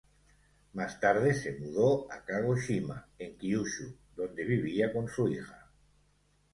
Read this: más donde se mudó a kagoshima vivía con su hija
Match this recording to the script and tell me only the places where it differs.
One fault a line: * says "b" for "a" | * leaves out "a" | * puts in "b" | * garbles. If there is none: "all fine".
* says "tarde" for "donde"
* puts in "en kyushu donde"